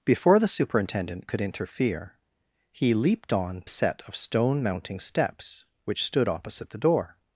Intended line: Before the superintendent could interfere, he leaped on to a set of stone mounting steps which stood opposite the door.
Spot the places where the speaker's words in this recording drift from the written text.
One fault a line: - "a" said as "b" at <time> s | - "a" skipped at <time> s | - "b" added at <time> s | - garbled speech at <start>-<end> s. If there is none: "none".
- "to" skipped at 3.6 s